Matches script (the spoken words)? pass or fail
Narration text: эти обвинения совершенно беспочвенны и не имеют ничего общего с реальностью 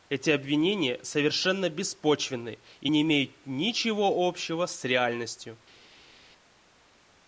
pass